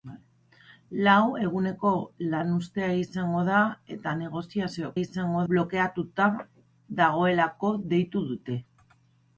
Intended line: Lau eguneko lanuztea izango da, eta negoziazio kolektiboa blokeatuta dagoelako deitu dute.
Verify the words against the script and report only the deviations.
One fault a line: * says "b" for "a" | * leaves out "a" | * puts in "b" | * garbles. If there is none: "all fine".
* says "izango" for "kolektiboa"